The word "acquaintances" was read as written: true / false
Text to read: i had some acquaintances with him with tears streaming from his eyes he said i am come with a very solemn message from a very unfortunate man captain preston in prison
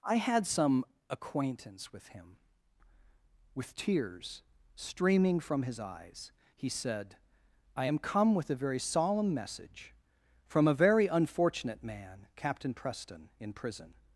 false